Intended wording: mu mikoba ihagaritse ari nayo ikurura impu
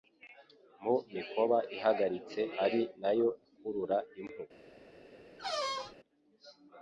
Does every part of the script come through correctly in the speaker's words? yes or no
yes